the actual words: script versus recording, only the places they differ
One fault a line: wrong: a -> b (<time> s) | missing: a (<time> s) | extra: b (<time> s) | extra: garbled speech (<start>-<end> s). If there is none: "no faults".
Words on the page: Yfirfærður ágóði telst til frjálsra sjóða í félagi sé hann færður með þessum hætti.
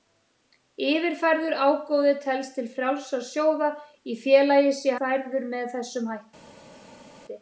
missing: hann (5.0 s)